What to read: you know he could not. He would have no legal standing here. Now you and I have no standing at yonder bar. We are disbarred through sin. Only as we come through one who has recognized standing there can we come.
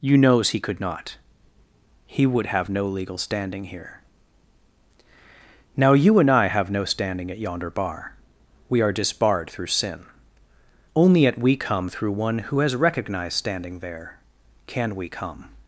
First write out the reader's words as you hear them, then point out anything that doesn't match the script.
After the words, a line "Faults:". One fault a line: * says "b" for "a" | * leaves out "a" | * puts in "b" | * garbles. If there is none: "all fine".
you knows he could not. He would have no legal standing here. Now you and I have no standing at yonder bar. We are disbarred through sin. Only at we come through one who has recognized standing there can we come.
Faults:
* says "knows" for "know"
* says "at" for "as"